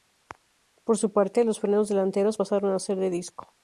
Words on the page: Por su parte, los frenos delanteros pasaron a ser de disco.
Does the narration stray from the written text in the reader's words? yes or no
no